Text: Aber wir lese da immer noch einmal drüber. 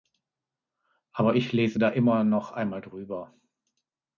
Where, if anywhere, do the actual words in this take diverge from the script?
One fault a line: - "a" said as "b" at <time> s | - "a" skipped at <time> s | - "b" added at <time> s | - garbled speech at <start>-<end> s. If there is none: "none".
- "wir" said as "ich" at 1.4 s